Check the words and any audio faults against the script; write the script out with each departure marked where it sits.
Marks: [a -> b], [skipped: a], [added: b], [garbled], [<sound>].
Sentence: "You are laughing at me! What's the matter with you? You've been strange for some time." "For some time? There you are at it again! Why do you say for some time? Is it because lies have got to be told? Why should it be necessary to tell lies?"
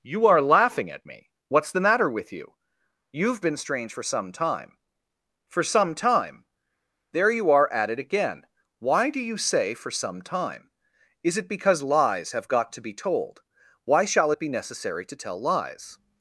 "You are laughing at me! What's the matter with you? You've been strange for some time." "For some time? There you are at it again! Why do you say for some time? Is it because lies have got to be told? Why [should -> shall] it be necessary to tell lies?"